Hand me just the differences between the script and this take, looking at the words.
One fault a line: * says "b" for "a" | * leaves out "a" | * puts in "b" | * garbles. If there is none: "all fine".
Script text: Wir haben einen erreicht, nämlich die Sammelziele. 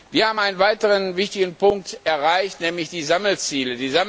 * puts in "weiteren wichtigen Punkt"